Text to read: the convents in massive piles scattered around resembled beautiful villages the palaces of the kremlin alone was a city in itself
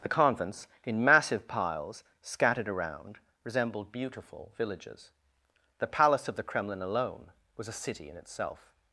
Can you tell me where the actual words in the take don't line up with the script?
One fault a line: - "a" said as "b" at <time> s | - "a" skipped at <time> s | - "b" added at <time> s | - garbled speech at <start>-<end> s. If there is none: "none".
- "palaces" said as "palace" at 5.9 s